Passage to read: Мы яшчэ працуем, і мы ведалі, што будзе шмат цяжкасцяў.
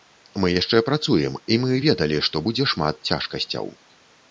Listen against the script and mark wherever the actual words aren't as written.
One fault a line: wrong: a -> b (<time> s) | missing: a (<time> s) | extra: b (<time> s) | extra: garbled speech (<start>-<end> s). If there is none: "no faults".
no faults